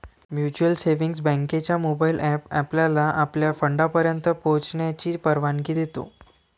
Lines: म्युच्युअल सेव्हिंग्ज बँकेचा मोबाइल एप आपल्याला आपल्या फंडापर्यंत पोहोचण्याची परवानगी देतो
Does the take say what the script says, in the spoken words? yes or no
yes